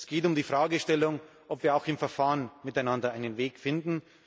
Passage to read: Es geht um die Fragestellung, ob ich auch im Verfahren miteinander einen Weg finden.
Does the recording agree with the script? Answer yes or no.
no